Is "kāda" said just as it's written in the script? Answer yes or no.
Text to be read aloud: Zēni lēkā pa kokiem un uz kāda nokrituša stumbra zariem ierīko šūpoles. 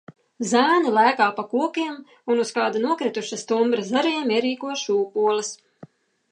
yes